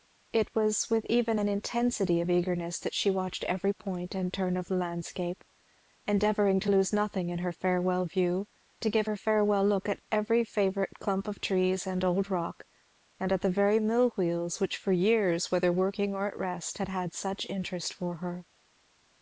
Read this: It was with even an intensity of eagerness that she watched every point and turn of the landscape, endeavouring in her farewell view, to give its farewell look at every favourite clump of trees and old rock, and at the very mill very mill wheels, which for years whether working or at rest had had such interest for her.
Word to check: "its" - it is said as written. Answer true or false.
false